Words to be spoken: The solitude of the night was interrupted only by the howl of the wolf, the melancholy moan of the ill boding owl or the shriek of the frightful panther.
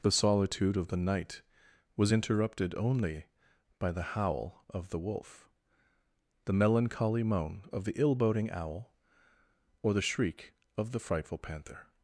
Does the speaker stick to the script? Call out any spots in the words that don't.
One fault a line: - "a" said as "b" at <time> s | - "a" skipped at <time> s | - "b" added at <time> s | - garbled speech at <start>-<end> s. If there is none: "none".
none